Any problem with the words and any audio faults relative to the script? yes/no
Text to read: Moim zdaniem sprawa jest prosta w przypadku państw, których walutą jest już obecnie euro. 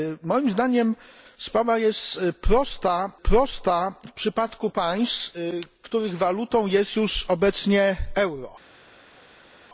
yes